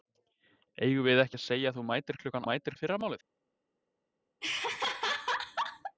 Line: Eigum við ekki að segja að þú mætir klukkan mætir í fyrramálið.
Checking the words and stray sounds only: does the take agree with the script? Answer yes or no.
no